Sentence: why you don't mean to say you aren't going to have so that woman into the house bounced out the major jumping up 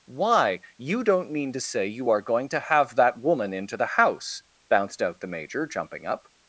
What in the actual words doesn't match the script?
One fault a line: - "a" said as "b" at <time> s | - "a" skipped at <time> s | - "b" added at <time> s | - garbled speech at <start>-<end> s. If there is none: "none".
- "aren't" said as "are" at 2.1 s
- "so" skipped at 3.0 s